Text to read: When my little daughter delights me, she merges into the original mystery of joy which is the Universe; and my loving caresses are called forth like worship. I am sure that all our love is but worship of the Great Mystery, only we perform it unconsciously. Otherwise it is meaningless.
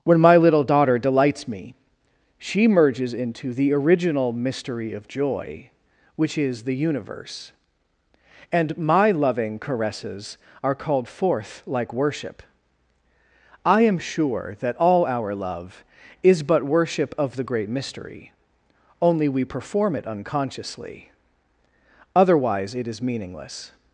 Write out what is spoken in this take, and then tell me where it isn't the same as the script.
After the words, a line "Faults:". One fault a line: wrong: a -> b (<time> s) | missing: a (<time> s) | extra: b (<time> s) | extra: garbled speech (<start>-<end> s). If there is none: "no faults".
When my little daughter delights me, she merges into the original mystery of joy which is the Universe; and my loving caresses are called forth like worship. I am sure that all our love is but worship of the Great Mystery, only we perform it unconsciously. Otherwise it is meaningless.
Faults:
no faults